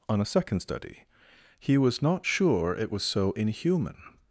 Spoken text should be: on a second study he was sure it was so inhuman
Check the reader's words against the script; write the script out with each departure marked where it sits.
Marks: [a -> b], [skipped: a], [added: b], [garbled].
on a second study he was [added: not] sure it was so inhuman